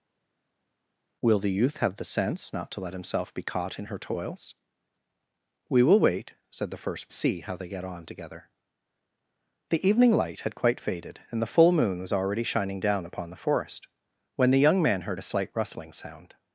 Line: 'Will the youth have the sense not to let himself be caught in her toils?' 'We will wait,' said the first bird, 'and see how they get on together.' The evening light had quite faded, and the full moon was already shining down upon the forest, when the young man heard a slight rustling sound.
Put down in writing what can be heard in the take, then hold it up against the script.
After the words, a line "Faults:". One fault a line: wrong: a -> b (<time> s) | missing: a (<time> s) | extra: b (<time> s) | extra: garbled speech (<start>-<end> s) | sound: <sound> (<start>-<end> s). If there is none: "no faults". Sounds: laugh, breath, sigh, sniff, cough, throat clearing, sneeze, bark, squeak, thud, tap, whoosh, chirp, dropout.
'Will the youth have the sense not to let himself be caught in her toils?' 'We will wait,' said the first see how they get on together.' The evening light had quite faded, and the full moon was already shining down upon the forest, when the young man heard a slight rustling sound.
Faults:
missing: bird and (7.1 s)